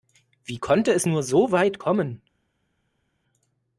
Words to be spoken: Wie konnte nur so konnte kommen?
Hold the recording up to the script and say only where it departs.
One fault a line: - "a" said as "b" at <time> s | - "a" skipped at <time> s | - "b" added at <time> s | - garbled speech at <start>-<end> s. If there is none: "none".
- "es" added at 0.9 s
- "konnte" said as "weit" at 1.5 s